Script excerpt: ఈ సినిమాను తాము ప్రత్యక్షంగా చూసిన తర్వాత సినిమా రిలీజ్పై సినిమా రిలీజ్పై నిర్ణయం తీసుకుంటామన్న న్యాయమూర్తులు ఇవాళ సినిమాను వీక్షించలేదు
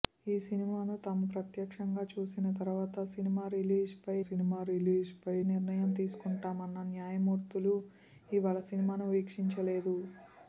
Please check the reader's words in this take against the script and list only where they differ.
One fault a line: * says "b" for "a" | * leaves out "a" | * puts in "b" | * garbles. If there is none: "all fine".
all fine